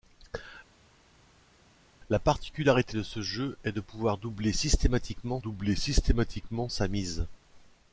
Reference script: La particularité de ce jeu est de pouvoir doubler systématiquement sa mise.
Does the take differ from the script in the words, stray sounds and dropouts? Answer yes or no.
yes